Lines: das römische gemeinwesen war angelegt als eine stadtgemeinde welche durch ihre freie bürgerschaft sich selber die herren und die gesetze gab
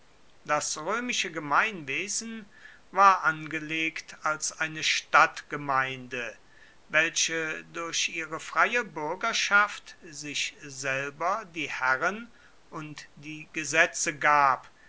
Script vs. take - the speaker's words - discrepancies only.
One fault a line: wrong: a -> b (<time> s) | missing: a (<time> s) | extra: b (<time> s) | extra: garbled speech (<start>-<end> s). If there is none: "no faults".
no faults